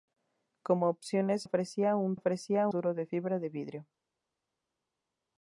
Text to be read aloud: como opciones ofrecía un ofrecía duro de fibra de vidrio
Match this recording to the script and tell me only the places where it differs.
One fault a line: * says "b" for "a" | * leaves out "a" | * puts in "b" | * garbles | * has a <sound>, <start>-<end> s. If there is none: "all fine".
all fine